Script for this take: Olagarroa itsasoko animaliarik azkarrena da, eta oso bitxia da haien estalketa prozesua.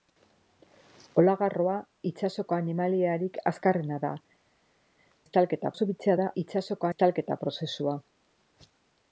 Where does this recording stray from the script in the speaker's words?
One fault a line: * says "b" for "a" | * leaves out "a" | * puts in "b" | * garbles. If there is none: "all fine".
* says "estalketa" for "eta"
* says "itsasoko" for "haien"